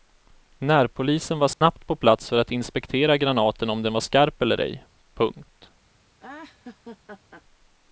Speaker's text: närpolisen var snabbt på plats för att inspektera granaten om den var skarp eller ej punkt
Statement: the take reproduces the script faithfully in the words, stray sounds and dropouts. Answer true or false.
false